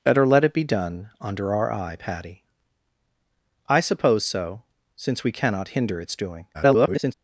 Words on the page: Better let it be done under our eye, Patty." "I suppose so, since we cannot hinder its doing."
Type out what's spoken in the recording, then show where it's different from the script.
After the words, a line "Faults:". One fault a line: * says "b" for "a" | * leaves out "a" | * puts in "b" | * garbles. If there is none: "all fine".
Better let it be done under our eye, Patty." "I suppose so, since we cannot hinder its doing." [garbled]
Faults:
* garbles